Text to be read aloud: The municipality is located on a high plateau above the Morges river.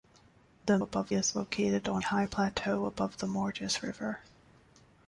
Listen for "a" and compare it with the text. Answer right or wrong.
wrong